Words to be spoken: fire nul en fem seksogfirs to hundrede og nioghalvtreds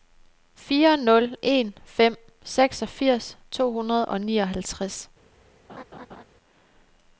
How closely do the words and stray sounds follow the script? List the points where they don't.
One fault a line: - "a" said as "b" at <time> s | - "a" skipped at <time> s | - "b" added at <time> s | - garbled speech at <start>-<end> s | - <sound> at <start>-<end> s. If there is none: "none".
- laugh at 5.7-6.2 s